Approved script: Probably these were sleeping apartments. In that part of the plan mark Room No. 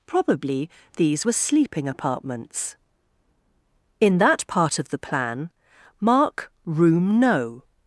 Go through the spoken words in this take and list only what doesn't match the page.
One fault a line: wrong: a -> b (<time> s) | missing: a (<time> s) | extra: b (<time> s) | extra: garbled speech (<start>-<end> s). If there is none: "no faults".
no faults